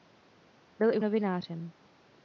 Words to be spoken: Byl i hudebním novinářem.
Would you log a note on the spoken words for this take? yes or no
yes